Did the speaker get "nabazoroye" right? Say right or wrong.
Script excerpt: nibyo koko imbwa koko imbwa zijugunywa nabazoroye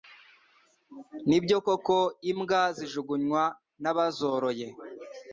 right